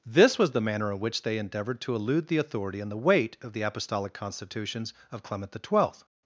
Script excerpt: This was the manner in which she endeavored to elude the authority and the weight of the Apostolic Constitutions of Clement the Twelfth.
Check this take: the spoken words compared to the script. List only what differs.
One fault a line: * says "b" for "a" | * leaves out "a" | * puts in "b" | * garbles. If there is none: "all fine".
* says "they" for "she"